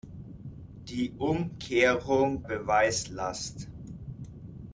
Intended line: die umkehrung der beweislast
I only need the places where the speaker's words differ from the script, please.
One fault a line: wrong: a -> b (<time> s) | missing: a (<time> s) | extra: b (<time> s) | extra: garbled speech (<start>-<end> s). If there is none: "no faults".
missing: der (2.4 s)